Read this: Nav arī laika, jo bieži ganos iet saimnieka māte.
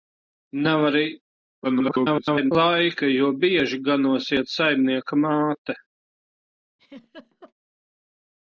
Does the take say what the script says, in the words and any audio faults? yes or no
no